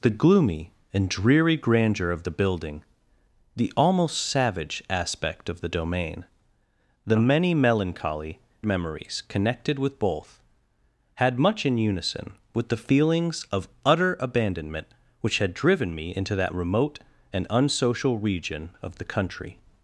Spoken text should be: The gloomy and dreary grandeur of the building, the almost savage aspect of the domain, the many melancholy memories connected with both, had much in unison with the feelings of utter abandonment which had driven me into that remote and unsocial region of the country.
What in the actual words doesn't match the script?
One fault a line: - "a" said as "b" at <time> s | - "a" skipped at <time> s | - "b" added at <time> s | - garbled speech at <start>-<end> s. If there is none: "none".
none